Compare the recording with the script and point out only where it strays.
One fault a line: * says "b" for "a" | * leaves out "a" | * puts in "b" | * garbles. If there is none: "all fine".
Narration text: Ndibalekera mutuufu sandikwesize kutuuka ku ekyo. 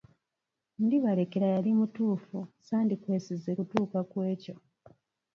* puts in "yali"